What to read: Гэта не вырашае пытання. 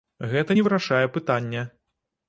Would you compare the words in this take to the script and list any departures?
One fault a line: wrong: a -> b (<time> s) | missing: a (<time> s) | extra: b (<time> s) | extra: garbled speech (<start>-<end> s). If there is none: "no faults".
no faults